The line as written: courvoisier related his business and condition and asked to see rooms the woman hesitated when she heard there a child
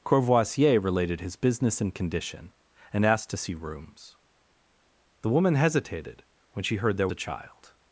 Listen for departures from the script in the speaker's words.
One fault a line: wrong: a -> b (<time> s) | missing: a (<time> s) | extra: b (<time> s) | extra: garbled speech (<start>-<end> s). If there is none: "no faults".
no faults